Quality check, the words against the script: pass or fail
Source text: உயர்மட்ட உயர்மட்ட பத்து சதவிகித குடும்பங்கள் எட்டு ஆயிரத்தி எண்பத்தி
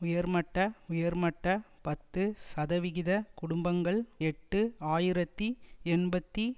pass